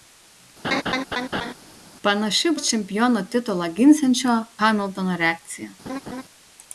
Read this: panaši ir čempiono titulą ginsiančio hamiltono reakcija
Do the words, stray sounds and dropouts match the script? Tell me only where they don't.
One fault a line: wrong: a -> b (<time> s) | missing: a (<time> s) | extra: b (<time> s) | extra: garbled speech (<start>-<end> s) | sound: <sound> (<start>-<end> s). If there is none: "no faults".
sound: laugh (0.6-1.5 s)
sound: laugh (5.8-6.2 s)